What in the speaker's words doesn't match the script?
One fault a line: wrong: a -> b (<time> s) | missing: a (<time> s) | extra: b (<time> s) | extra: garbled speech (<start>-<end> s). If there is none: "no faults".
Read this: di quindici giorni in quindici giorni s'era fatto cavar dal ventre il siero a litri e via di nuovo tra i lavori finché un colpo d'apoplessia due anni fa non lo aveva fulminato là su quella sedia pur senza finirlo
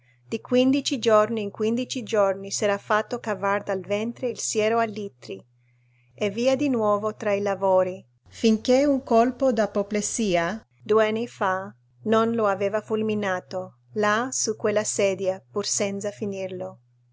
no faults